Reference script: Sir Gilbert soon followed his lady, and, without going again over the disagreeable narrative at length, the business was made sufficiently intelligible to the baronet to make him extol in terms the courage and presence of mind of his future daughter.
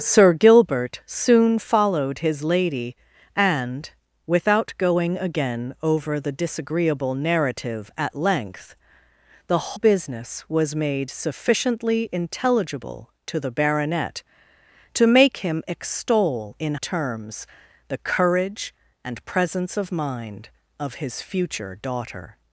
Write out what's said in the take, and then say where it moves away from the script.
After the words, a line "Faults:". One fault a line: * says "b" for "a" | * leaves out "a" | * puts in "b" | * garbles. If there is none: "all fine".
Sir Gilbert soon followed his lady, and, without going again over the disagreeable narrative at length, the business was made sufficiently intelligible to the baronet to make him extol in terms the courage and presence of mind of his future daughter.
Faults:
all fine